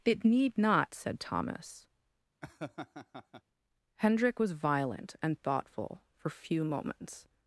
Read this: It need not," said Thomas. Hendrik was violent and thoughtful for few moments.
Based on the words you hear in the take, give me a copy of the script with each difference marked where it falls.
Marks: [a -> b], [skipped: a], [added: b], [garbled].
It need not," said Thomas. Hendrik was violent and thoughtful for few moments.